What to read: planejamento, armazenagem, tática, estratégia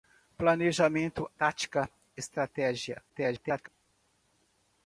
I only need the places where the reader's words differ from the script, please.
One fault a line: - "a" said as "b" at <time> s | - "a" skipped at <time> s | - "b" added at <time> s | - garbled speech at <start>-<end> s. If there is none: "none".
- "armazenagem" skipped at 1.3 s
- garbled speech at 3.1-3.7 s